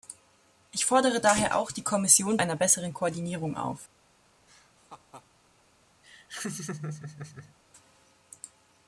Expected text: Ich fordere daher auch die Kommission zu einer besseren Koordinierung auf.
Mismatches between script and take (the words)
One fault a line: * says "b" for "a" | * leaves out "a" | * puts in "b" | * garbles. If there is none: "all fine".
* leaves out "zu"